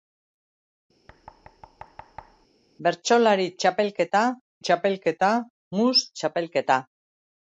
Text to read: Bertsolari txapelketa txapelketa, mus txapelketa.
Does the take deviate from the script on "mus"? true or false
false